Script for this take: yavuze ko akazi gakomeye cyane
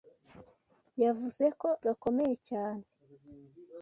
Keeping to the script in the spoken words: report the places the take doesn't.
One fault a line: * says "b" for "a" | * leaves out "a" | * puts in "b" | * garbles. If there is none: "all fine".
* leaves out "akazi"